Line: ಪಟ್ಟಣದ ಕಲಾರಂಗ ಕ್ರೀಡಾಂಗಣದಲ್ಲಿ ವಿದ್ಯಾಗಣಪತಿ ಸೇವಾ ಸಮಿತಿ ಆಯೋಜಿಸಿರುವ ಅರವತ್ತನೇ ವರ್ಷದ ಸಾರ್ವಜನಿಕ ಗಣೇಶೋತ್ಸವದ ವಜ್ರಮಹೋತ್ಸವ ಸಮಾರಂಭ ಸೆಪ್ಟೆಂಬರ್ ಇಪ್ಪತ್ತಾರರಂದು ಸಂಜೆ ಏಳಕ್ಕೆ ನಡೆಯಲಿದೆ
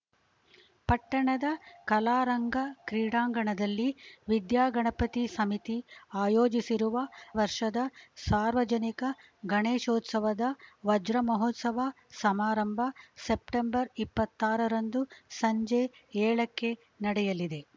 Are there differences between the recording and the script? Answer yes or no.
yes